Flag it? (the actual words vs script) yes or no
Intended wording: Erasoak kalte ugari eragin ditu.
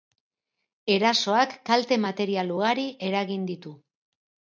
yes